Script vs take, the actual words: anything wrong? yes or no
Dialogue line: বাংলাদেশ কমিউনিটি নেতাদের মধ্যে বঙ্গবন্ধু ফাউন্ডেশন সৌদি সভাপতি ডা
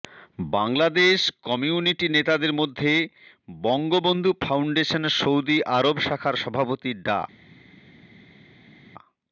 yes